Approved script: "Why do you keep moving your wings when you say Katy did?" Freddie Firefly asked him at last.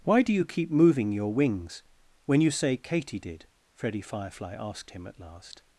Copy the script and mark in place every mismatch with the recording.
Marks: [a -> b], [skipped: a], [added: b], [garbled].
"Why do you keep moving your wings when you say Katy did?" Freddie Firefly asked him at last.